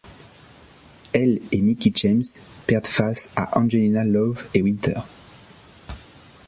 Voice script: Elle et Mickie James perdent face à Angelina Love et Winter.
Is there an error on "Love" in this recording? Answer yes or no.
no